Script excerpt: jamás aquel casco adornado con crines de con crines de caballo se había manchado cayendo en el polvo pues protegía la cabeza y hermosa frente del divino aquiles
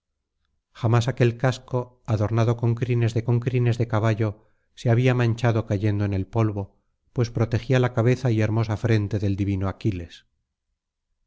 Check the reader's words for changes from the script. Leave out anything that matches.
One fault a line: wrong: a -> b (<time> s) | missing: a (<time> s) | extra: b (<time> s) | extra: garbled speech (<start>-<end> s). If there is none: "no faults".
no faults